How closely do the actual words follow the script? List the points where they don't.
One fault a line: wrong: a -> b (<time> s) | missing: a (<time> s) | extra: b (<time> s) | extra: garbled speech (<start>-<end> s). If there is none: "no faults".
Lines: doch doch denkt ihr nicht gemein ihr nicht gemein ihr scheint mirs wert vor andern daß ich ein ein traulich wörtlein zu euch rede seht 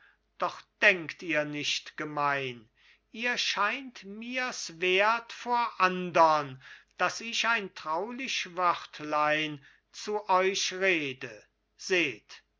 missing: doch (0.6 s)
missing: nicht gemein ihr (3.4 s)
missing: ein (7.8 s)